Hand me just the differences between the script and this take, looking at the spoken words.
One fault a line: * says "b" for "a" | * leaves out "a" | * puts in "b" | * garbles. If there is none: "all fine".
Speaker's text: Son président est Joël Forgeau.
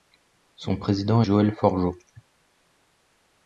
* leaves out "est"